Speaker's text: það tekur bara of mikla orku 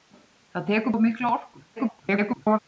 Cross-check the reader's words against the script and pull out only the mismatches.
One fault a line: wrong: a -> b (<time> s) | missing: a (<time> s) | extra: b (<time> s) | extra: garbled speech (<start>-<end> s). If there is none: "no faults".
missing: bara (0.9 s)
extra: garbled speech (1.8-2.6 s)